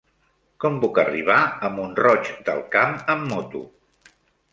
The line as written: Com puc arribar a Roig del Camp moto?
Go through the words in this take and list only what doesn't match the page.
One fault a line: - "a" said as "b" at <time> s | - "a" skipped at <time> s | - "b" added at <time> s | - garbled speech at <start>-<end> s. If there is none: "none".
- "Mont" added at 1.8 s
- "amb" added at 3.1 s